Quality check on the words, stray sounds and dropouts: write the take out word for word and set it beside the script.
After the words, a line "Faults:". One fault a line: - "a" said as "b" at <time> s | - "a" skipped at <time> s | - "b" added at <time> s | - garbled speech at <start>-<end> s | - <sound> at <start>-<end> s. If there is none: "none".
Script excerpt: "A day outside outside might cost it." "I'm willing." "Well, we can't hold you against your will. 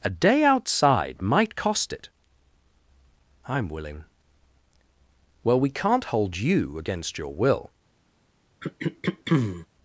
"A day outside might cost it." "I'm willing." "Well, we can't hold you against your will.
Faults:
- "outside" skipped at 1.2 s
- throat clearing at 8.6-9.7 s